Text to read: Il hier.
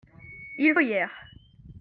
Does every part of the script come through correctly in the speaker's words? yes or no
yes